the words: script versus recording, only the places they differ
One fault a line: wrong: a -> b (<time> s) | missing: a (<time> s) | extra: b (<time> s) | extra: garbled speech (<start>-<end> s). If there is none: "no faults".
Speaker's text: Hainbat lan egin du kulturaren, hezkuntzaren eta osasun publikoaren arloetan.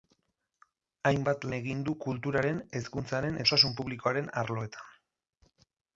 missing: lan (1.4 s)
missing: eta (3.4 s)